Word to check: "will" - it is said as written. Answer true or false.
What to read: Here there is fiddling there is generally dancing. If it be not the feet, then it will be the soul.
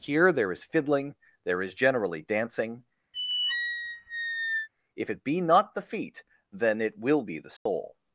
true